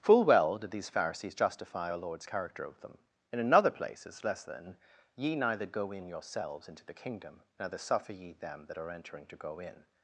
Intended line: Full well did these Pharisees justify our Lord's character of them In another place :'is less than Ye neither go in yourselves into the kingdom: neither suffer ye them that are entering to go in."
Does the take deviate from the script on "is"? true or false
false